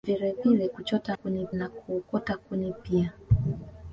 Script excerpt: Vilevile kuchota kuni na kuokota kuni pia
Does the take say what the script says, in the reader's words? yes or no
yes